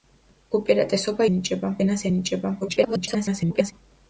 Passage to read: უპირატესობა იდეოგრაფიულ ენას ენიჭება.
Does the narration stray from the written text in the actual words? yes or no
yes